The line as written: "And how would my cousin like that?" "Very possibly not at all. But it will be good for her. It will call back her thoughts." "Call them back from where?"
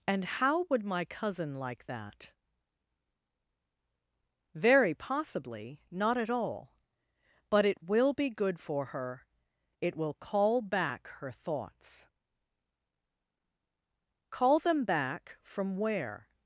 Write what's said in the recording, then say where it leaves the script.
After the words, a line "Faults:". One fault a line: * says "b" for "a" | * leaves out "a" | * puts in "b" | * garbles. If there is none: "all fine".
"And how would my cousin like that?" "Very possibly not at all. But it will be good for her. It will call back her thoughts." "Call them back from where?"
Faults:
all fine